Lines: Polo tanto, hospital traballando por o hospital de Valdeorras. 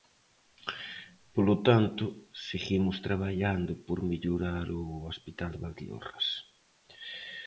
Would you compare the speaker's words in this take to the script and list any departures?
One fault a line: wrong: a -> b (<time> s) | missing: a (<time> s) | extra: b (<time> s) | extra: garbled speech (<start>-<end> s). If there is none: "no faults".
wrong: hospital -> seguimos (2.5 s)
extra: mellorar (4.1 s)